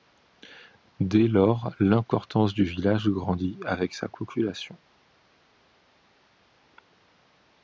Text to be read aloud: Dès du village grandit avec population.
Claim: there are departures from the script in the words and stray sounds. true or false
true